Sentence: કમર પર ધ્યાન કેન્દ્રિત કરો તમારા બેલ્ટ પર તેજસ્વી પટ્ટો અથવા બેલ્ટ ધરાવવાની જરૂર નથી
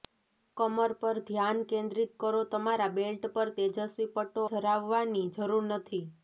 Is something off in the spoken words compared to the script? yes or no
yes